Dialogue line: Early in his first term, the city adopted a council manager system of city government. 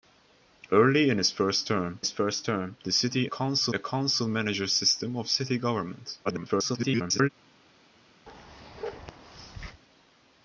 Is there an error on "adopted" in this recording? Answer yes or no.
yes